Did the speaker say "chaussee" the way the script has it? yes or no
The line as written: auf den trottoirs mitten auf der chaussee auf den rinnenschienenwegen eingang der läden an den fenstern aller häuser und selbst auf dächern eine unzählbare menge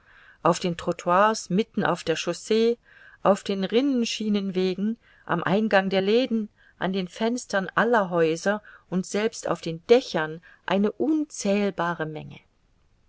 yes